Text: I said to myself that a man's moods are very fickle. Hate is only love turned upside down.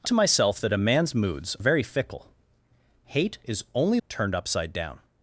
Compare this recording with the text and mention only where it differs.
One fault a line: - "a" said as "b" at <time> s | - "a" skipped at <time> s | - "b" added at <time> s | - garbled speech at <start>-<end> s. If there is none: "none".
- "said" skipped at 0.1 s
- "are" skipped at 1.5 s
- "love" skipped at 4.0 s